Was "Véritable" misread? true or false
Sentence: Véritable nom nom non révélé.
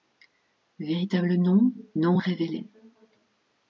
false